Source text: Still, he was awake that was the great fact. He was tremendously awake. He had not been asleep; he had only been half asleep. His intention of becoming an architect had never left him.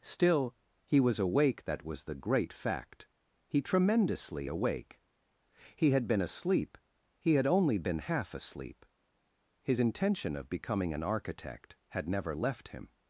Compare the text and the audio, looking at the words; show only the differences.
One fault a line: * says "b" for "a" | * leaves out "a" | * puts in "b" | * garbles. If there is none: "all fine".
* leaves out "was"
* leaves out "not"